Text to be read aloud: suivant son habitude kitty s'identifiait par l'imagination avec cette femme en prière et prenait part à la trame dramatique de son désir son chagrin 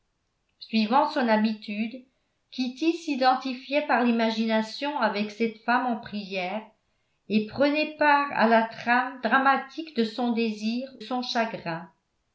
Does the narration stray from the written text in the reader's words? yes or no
no